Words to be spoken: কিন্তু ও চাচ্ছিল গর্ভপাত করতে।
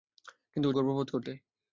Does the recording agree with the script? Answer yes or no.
no